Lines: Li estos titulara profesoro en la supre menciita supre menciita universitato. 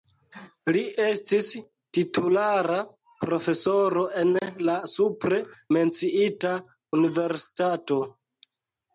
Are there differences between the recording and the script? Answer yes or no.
yes